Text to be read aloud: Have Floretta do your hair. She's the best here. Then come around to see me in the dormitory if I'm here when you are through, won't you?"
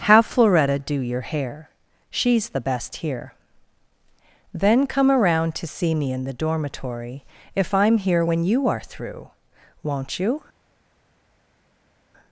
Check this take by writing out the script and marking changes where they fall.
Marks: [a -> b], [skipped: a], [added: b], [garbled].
Have Floretta do your hair. She's the best here. Then come around to see me in the dormitory if I'm here when you are through, won't you?"